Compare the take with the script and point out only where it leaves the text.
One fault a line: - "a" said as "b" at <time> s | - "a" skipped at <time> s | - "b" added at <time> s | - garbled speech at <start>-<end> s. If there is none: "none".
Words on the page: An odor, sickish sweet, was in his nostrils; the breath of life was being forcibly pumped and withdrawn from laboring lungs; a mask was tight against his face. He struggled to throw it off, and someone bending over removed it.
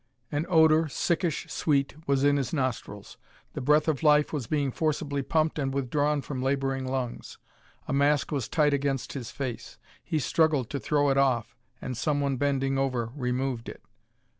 none